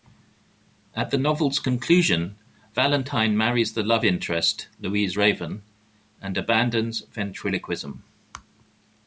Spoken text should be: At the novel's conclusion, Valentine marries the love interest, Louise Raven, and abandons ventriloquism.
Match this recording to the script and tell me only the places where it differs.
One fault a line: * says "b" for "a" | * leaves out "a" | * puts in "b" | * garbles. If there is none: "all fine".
all fine